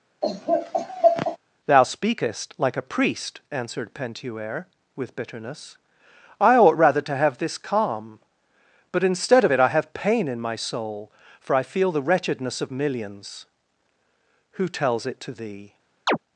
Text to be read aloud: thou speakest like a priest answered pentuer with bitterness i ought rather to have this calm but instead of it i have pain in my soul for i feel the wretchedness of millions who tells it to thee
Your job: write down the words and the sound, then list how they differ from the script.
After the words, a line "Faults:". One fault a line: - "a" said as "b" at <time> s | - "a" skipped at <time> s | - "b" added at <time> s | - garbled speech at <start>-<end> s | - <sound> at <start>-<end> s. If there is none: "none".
thou speakest like a priest answered pentuer with bitterness i ought rather to have this calm but instead of it i have pain in my soul for i feel the wretchedness of millions who tells it to thee
Faults:
- laugh at 0.2-1.4 s
- chirp at 16.1-16.2 s